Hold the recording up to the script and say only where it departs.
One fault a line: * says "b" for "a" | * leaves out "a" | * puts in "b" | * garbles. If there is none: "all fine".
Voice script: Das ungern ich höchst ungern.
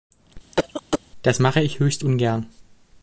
* says "mache" for "ungern"